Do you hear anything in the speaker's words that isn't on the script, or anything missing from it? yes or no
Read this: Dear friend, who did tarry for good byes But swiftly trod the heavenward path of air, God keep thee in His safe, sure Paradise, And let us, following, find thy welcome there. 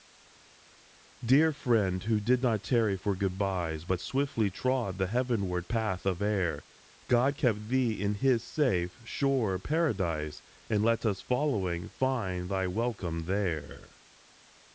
yes